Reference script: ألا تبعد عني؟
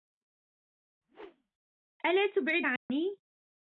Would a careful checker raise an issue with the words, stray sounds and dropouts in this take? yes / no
yes